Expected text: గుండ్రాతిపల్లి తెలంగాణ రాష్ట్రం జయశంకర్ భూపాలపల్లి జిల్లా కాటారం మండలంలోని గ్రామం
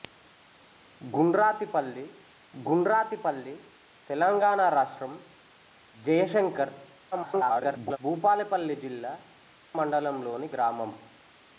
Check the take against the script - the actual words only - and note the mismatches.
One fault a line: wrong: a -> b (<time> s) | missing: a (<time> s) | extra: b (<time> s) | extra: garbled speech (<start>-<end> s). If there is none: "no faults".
extra: గుండ్రాతిపల్లి (2.5 s)
extra: garbled speech (7.1-8.0 s)
missing: కాటారం (9.1 s)